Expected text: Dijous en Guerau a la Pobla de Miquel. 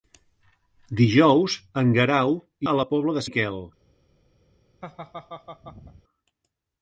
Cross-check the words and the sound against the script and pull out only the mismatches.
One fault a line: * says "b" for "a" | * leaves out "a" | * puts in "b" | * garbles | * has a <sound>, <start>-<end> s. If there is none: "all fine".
* has a laugh, 4.8-6.0 s